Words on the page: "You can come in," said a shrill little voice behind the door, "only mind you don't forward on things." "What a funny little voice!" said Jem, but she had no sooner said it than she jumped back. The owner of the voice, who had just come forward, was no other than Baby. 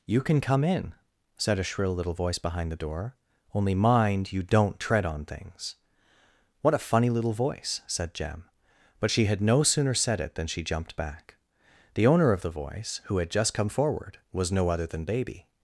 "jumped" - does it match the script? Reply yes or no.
yes